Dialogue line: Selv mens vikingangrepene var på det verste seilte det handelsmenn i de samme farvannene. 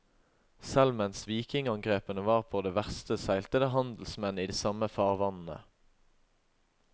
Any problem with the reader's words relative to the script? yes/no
no